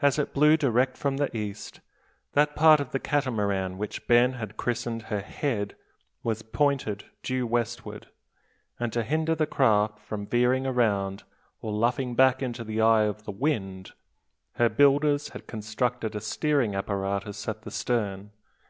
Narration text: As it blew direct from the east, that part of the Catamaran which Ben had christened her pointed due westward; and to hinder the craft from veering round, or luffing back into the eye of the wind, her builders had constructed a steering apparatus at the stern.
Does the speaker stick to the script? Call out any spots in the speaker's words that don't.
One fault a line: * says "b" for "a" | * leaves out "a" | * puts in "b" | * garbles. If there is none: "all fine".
* puts in "head was"